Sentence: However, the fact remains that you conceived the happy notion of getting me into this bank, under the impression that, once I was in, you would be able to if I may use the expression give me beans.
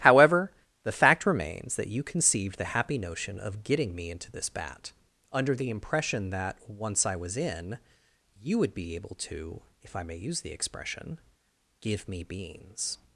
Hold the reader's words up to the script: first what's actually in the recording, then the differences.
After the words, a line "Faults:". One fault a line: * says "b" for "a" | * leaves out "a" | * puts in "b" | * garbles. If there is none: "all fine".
However, the fact remains that you conceived the happy notion of getting me into this bat, under the impression that, once I was in, you would be able to if I may use the expression give me beans.
Faults:
* says "bat" for "bank"